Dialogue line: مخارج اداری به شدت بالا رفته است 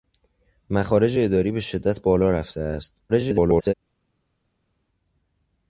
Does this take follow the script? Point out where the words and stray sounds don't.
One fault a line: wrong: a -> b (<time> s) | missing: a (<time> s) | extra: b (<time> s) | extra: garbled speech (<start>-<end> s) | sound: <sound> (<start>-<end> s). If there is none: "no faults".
extra: garbled speech (3.1-3.7 s)